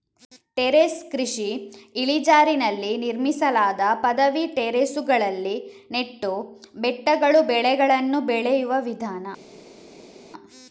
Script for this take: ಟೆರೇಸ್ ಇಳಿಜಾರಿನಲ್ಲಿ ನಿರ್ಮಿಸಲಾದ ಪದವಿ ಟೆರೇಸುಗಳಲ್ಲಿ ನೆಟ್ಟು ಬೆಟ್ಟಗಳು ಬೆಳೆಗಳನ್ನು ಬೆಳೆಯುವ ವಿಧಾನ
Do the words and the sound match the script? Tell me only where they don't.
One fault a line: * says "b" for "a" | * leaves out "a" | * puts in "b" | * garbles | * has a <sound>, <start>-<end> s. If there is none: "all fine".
* puts in "ಕೃಷಿ"